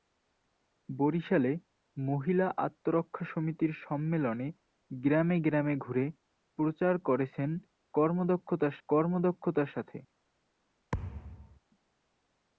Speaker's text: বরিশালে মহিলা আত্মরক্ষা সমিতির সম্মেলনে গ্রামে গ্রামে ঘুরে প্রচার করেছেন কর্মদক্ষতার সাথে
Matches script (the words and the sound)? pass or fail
fail